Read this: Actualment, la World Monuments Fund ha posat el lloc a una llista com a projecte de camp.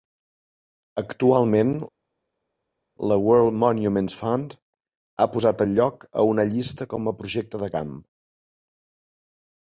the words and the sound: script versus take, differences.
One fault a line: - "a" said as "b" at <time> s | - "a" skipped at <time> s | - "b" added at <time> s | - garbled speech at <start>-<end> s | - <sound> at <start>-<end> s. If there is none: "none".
none